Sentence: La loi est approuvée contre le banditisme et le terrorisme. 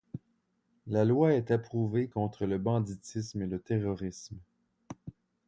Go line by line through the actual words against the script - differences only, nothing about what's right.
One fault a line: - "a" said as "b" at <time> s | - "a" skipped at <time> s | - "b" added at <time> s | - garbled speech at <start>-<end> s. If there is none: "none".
none